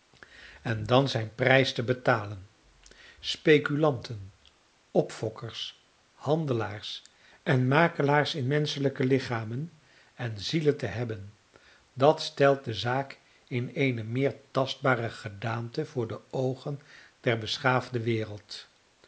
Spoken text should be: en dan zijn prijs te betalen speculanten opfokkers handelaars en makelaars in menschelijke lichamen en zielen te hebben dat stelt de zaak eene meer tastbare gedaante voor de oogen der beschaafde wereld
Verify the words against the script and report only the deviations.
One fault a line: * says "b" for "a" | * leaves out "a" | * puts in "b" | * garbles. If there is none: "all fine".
* puts in "in"